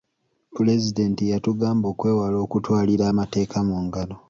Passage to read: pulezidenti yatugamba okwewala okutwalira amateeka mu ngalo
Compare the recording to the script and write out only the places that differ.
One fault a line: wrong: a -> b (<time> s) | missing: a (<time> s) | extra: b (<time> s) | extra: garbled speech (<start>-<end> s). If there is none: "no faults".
no faults